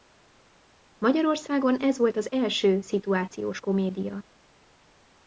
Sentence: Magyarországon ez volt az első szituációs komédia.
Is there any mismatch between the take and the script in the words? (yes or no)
no